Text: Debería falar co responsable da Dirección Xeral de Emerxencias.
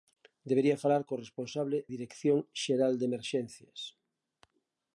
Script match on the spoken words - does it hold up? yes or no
no